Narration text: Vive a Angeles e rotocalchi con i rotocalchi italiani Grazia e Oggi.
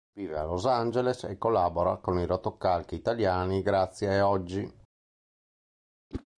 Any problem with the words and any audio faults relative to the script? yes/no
yes